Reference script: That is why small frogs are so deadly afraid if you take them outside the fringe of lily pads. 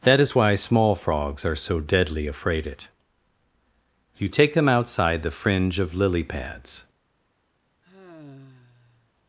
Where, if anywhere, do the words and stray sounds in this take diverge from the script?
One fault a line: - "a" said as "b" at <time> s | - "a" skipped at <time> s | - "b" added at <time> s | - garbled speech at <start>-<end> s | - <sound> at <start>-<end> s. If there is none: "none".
- "if" said as "it" at 2.7 s
- sigh at 7.8-9.1 s